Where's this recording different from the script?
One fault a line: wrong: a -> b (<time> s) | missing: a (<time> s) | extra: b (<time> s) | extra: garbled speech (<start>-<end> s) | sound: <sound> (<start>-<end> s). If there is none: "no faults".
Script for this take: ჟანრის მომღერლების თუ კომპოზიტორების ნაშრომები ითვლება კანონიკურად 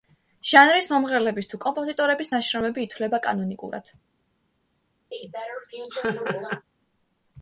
sound: laugh (5.1-6.7 s)